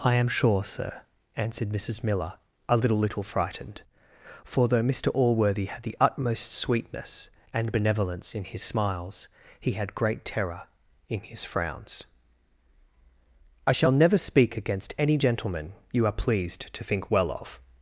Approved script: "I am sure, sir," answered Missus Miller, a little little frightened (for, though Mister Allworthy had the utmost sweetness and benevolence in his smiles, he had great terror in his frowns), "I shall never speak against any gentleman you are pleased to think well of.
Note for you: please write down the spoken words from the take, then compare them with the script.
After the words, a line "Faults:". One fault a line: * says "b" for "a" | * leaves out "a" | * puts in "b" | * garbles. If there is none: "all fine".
"I am sure, sir," answered Missus Miller, a little little frightened (for, though Mister Allworthy had the utmost sweetness and benevolence in his smiles, he had great terror in his frowns), "I shall never speak against any gentleman you are pleased to think well of.
Faults:
all fine